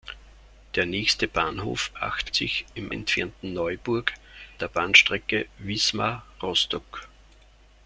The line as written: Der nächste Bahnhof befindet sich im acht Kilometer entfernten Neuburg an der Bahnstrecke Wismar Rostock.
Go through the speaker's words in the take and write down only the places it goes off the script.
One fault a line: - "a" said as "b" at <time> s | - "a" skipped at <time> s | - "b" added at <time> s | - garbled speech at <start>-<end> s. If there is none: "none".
- "befindet" said as "acht" at 2.0 s
- "acht Kilometer" skipped at 2.9 s
- "an" skipped at 4.1 s